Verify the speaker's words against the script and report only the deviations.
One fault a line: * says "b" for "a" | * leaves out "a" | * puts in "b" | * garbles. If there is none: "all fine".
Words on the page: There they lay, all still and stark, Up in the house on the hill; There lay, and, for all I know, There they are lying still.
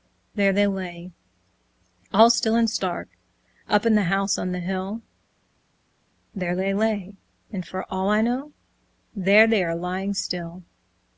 * puts in "they"